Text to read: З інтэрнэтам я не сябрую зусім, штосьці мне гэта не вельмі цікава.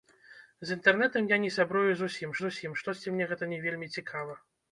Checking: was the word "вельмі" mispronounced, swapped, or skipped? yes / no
no